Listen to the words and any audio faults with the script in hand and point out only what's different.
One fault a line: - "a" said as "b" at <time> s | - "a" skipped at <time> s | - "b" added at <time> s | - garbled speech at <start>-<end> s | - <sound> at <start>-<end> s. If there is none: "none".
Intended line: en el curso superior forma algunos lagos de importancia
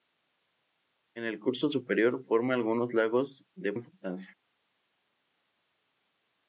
none